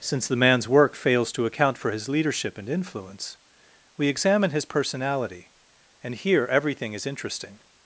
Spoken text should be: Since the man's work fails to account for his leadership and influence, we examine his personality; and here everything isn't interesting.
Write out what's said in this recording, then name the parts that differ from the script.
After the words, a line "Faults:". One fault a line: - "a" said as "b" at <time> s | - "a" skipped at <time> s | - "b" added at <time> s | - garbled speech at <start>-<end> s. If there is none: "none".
Since the man's work fails to account for his leadership and influence, we examine his personality; and here everything is interesting.
Faults:
- "isn't" said as "is" at 6.9 s